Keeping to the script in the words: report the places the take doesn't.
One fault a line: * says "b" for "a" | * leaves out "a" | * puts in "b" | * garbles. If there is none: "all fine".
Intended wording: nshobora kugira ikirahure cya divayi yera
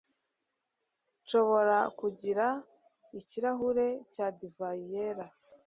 all fine